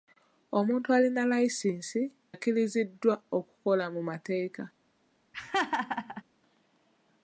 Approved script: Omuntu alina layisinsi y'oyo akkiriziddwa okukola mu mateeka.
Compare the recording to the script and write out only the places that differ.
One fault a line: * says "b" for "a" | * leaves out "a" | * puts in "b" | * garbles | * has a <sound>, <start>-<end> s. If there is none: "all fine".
* leaves out "y'oyo"
* has a laugh, 5.3-6.2 s